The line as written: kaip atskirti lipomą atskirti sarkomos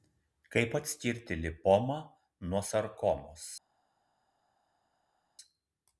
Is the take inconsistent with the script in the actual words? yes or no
yes